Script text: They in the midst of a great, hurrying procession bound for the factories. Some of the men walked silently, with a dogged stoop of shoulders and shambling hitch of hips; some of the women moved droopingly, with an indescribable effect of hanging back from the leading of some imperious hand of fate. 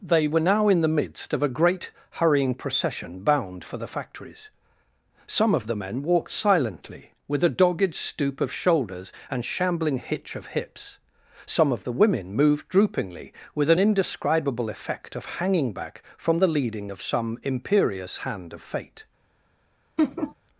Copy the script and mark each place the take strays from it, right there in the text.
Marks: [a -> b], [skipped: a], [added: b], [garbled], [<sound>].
They [added: were now] in the midst of a great, hurrying procession bound for the factories. Some of the men walked silently, with a dogged stoop of shoulders and shambling hitch of hips; some of the women moved droopingly, with an indescribable effect of hanging back from the leading of some imperious hand of fate. [laugh]